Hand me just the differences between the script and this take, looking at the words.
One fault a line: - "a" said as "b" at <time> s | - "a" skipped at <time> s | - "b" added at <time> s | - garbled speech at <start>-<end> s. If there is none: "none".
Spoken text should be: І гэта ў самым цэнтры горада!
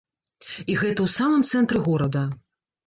none